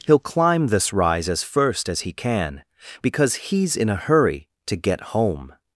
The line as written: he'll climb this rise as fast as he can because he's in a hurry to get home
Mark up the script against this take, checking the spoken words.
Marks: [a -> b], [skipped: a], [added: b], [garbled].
he'll climb this rise as [fast -> first] as he can because he's in a hurry to get home